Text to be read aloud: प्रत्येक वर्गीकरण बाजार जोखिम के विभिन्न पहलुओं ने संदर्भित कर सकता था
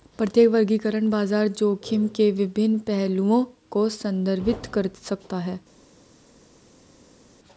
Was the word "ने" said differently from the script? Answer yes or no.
yes